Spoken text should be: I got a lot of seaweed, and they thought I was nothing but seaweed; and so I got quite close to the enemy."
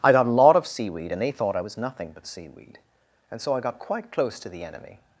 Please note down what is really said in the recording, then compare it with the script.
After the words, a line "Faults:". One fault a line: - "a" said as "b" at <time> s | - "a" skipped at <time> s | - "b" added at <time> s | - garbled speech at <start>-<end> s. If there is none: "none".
I got a lot of seaweed, and they thought I was nothing but seaweed; and so I got quite close to the enemy."
Faults:
none